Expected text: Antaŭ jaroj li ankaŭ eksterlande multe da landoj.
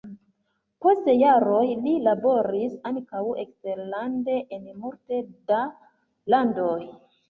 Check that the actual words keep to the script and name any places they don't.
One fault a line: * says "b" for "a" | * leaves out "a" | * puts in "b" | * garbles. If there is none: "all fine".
* says "Post" for "Antaŭ"
* puts in "laboris"
* puts in "en"